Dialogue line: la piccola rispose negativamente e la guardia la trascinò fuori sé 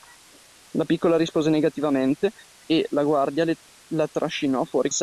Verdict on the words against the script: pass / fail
pass